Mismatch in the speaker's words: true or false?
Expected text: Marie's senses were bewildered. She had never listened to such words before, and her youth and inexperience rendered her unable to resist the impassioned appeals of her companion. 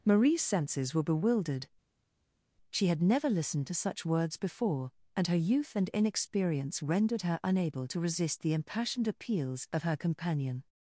false